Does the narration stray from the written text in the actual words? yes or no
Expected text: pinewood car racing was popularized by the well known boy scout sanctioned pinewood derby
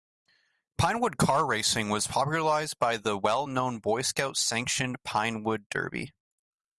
no